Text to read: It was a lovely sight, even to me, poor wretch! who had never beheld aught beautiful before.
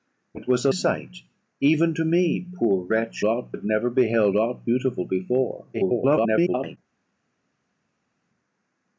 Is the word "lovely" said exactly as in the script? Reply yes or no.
no